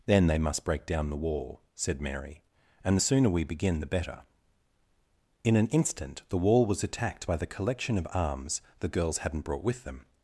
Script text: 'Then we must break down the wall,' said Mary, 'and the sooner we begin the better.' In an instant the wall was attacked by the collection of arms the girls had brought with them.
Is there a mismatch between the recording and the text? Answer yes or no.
yes